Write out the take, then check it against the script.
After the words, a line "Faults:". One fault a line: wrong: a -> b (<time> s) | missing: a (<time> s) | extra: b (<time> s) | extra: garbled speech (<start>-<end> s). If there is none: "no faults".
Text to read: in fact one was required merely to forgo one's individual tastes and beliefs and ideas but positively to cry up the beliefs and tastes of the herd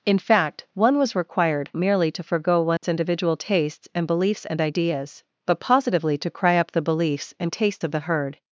in fact one was required merely to forgo one's individual tastes and beliefs and ideas but positively to cry up the beliefs and tastes of the herd
Faults:
no faults